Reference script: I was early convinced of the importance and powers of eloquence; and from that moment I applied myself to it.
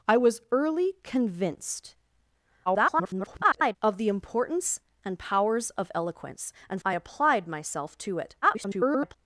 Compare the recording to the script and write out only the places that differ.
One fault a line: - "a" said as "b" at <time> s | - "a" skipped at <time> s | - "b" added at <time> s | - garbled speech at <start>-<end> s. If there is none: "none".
- garbled speech at 2.7-3.8 s
- "from that moment" skipped at 6.8 s
- garbled speech at 8.4-9.2 s